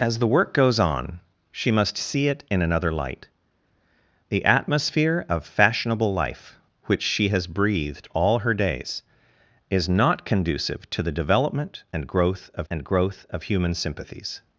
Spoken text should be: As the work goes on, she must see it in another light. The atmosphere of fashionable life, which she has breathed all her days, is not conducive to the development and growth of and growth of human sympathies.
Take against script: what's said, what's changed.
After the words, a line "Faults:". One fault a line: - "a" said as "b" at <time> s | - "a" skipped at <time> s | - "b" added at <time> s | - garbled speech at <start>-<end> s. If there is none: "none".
As the work goes on, she must see it in another light. The atmosphere of fashionable life, which she has breathed all her days, is not conducive to the development and growth of and growth of human sympathies.
Faults:
none